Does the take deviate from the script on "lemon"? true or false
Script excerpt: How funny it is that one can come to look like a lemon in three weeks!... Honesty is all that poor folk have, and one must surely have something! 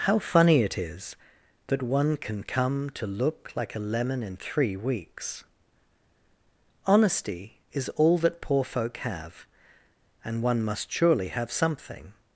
false